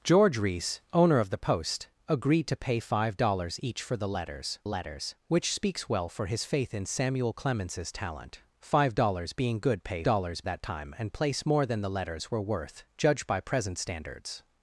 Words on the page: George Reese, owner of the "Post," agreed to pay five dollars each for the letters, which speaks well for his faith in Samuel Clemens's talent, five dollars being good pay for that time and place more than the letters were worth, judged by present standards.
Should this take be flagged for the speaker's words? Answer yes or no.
yes